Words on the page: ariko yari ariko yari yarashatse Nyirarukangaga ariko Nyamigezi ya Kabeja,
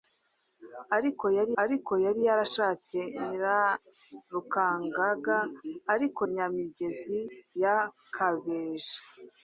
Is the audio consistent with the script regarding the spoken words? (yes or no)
yes